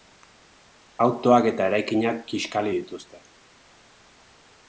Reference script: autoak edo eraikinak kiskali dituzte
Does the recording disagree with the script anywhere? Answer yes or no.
yes